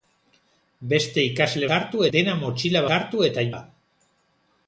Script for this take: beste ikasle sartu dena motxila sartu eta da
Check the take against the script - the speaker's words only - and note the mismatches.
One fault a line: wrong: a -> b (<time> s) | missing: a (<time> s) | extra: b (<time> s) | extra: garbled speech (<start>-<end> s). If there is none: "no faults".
no faults